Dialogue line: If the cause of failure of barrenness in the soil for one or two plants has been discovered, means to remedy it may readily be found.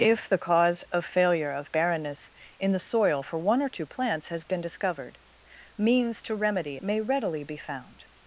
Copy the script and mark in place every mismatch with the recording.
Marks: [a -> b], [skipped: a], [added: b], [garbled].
If the cause of failure of barrenness in the soil for one or two plants has been discovered, means to remedy [skipped: it] may readily be found.